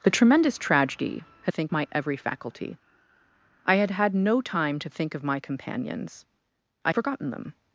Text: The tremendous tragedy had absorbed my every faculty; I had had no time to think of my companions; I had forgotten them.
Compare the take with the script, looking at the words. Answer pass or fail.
fail